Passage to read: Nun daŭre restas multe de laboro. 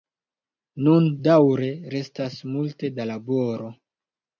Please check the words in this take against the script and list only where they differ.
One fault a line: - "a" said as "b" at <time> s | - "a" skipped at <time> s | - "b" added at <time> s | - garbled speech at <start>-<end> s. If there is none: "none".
- "de" said as "da" at 3.0 s